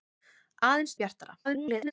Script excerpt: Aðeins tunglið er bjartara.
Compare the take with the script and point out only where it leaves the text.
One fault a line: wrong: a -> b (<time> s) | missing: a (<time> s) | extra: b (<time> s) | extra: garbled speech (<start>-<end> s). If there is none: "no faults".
missing: tunglið (0.9 s)
extra: garbled speech (1.4-1.9 s)